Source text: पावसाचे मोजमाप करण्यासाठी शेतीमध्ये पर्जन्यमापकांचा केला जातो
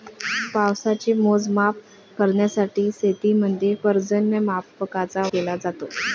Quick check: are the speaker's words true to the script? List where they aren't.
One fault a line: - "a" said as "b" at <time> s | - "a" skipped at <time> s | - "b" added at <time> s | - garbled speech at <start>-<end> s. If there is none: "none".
none